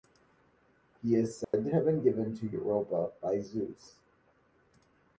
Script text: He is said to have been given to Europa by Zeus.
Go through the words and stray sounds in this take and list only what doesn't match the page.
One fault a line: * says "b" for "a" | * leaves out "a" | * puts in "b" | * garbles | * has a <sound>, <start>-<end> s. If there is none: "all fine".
* has a dropout, 1.4-1.5 s